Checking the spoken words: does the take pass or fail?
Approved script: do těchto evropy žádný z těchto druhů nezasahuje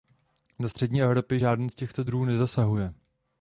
fail